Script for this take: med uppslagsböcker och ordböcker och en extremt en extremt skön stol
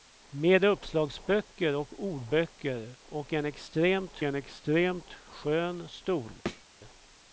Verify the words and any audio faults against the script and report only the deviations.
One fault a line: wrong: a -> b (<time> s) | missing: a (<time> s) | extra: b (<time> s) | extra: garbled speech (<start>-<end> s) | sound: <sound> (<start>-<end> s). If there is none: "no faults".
sound: thud (6.5-6.7 s)